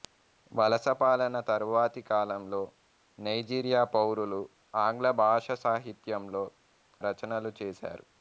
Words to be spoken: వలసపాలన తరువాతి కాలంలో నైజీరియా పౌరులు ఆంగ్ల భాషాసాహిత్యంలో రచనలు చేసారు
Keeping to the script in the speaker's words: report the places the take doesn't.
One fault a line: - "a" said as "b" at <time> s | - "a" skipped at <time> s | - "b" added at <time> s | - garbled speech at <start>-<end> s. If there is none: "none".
none